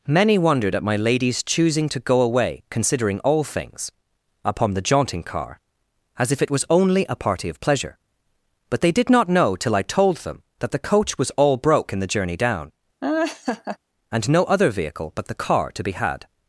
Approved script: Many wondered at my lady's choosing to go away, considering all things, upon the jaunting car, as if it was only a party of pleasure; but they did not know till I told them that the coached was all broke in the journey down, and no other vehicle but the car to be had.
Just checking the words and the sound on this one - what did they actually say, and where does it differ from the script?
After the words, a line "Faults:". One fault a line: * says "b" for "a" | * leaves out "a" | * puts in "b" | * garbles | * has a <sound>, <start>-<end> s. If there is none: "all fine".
Many wondered at my lady's choosing to go away, considering all things, upon the jaunting car, as if it was only a party of pleasure; but they did not know till I told them that the coach was all broke in the journey down, and no other vehicle but the car to be had.
Faults:
* says "coach" for "coached"
* has a laugh, 13.0-13.8 s